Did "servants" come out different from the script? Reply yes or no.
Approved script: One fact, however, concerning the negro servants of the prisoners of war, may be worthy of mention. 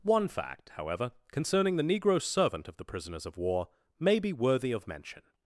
yes